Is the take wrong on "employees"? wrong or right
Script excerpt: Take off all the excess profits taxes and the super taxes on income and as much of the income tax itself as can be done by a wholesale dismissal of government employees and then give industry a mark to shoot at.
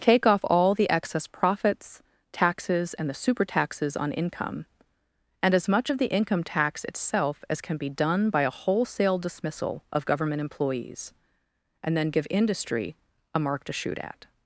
right